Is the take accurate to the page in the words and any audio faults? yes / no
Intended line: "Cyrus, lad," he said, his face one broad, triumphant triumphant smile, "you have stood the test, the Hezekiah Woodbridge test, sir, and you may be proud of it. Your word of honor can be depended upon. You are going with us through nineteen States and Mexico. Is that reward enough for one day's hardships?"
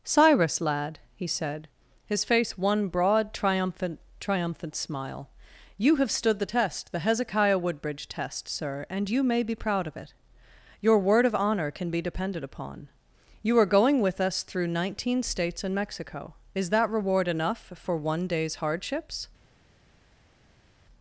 yes